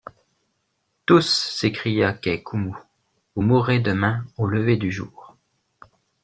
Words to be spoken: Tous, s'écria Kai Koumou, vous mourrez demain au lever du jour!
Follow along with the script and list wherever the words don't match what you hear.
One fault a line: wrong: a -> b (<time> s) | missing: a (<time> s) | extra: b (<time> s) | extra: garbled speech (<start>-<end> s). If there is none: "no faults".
no faults